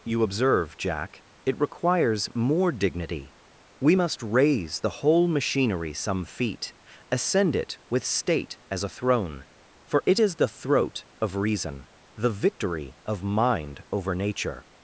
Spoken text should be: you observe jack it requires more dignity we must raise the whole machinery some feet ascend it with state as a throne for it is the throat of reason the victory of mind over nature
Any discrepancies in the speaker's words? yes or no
no